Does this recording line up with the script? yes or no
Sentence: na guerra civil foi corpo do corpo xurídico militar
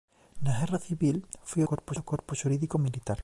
yes